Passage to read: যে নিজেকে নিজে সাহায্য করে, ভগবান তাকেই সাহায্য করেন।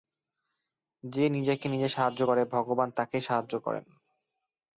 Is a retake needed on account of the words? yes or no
no